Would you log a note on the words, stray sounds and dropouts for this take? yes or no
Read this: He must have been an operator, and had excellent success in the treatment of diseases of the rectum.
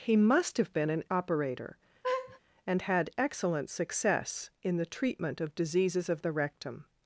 yes